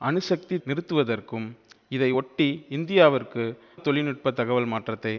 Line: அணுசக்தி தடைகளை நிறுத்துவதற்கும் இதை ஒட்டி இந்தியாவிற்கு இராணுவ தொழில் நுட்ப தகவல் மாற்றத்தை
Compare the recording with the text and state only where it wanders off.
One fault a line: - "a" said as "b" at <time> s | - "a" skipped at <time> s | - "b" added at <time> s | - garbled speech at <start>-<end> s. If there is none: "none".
- "தடைகளை" skipped at 0.6 s
- "இராணுவ" skipped at 3.4 s